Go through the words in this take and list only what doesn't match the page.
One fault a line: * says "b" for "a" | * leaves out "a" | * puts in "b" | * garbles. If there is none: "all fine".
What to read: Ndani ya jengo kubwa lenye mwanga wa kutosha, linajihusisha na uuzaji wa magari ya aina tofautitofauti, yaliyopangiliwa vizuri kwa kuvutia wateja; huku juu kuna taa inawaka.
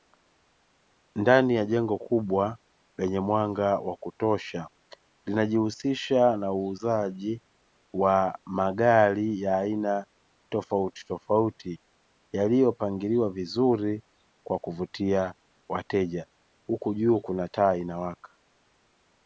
all fine